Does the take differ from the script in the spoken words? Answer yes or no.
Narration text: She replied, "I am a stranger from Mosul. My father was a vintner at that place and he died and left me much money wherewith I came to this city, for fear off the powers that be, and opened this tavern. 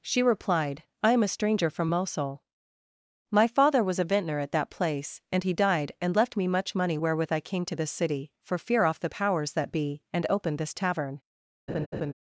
no